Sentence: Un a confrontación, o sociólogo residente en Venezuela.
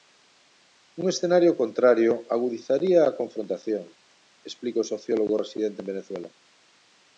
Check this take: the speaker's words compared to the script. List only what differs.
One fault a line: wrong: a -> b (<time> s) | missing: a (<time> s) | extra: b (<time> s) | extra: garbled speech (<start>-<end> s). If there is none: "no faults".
extra: escenario contrario agudizaría (1.1 s)
extra: explica (4.5 s)